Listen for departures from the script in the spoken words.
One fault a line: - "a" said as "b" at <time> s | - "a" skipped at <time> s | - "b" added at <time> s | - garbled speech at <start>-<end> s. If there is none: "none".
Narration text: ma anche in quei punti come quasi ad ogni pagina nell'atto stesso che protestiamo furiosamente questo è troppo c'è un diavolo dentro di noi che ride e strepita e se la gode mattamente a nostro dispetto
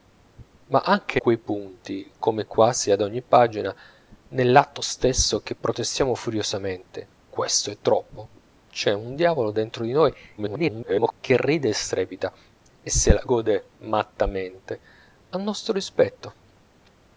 - "in" skipped at 1.2 s
- garbled speech at 10.4-11.1 s